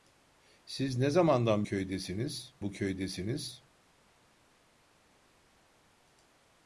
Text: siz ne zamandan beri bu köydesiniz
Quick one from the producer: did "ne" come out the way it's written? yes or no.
yes